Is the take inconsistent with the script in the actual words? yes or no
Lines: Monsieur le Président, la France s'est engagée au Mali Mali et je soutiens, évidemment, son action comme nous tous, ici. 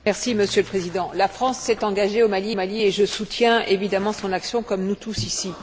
no